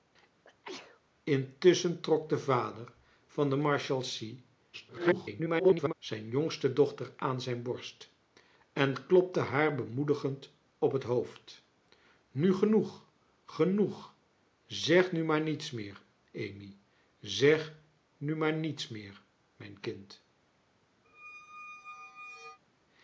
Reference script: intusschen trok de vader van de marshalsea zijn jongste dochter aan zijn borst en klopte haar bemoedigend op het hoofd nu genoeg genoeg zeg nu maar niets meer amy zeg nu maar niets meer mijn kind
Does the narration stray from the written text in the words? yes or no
yes